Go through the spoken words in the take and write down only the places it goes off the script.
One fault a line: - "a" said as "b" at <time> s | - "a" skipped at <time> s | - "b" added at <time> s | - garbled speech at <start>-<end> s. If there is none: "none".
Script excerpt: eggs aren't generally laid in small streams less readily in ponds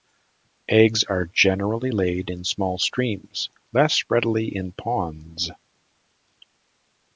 - "aren't" said as "are" at 1.0 s